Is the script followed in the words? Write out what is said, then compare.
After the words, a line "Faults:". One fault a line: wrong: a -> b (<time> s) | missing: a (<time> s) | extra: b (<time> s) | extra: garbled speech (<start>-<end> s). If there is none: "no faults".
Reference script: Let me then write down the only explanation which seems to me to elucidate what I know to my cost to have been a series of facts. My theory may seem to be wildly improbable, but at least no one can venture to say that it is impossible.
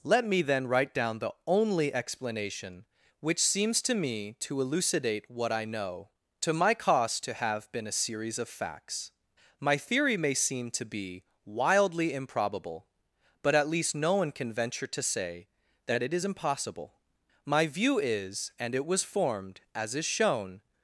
Let me then write down the only explanation which seems to me to elucidate what I know to my cost to have been a series of facts. My theory may seem to be wildly improbable, but at least no one can venture to say that it is impossible. My view is and it was formed, as is shown
Faults:
extra: My view is and it was formed as is shown (17.4 s)